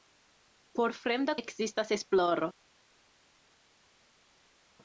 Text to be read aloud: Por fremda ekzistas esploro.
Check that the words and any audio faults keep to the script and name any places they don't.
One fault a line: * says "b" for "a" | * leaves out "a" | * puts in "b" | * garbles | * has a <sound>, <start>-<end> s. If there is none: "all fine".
all fine